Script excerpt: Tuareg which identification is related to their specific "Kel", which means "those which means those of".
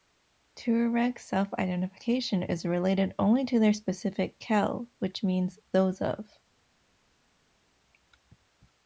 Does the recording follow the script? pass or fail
fail